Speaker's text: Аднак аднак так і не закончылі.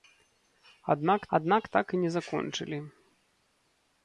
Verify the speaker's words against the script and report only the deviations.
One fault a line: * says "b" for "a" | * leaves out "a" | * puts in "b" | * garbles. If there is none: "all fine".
all fine